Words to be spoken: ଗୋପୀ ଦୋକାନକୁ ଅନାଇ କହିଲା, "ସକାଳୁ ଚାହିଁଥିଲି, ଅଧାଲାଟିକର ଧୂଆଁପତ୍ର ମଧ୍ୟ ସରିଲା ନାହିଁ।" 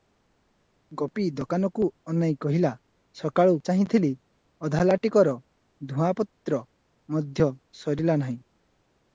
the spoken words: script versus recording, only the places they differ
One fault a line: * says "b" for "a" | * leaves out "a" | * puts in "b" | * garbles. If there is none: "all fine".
all fine